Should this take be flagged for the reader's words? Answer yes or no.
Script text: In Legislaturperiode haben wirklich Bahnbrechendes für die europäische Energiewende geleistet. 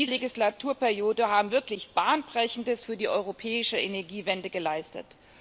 no